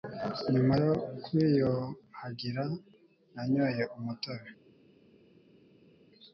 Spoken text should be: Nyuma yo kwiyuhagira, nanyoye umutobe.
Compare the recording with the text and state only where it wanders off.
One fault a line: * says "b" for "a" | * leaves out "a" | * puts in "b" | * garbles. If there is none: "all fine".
all fine